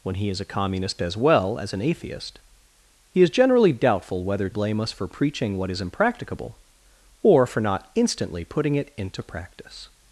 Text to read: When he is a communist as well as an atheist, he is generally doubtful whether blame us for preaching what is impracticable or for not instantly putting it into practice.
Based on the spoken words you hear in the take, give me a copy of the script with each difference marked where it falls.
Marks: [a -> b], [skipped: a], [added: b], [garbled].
When he is a communist as well as an atheist, he is generally doubtful whether blame us for preaching what is impracticable or for not instantly putting it into practice.